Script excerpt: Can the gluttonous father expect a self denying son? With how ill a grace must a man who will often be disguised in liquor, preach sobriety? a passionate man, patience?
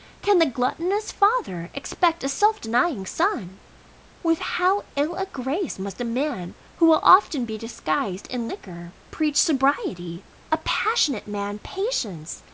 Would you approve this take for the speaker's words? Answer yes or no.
yes